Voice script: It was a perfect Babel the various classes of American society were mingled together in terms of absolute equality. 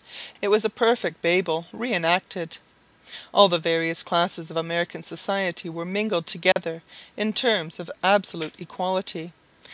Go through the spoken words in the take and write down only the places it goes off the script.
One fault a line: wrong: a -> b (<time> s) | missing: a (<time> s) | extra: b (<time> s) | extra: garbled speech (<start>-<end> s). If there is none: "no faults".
extra: re enacted All (1.7 s)